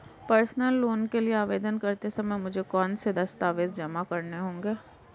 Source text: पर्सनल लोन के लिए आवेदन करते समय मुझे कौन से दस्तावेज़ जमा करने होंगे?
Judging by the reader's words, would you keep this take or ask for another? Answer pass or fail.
pass